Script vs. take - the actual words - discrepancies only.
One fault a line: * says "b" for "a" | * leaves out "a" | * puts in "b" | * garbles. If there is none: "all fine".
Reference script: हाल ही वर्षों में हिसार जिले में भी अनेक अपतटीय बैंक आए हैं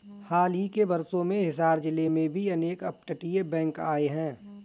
* puts in "के"